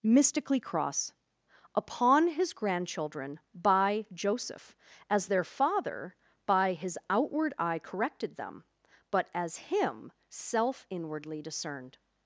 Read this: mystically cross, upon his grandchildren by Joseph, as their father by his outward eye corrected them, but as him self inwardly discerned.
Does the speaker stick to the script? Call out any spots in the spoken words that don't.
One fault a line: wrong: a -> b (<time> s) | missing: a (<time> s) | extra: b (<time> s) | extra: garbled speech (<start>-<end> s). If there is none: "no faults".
no faults